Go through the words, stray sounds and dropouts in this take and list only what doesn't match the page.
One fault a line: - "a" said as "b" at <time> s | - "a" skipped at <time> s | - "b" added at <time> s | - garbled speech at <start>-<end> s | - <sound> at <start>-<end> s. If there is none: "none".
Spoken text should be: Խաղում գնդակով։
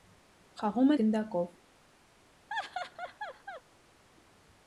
- laugh at 2.5-3.6 s